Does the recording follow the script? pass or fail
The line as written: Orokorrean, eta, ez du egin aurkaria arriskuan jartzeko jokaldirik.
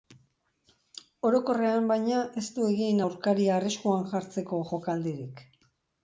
fail